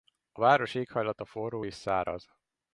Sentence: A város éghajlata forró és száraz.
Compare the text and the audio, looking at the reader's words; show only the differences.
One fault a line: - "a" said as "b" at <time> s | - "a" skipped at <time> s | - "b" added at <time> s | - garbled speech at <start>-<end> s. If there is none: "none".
none